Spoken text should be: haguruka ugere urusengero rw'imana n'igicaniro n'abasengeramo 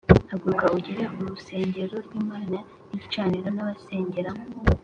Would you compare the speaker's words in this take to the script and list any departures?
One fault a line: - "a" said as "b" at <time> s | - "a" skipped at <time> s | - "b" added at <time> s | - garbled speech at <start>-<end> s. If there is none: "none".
none